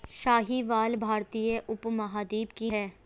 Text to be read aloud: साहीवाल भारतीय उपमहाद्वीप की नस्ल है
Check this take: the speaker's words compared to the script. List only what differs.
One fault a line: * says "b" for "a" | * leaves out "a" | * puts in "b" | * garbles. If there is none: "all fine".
* leaves out "नस्ल"